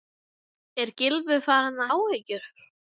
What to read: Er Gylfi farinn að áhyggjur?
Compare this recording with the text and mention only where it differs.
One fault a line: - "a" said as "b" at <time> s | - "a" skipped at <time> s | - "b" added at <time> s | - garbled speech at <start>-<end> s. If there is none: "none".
none